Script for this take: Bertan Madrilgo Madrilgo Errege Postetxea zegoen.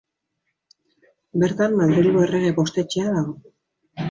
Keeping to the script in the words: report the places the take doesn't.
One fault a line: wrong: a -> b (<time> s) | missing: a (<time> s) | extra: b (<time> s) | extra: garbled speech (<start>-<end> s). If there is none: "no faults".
missing: Madrilgo (2.2 s)
wrong: zegoen -> dago (3.2 s)